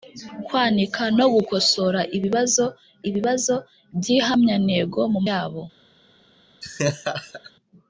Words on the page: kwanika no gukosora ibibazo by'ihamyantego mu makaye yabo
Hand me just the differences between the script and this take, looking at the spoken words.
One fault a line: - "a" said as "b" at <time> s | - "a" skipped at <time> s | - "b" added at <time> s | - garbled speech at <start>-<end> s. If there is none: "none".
- "ibibazo" added at 3.1 s
- "makaye" skipped at 5.2 s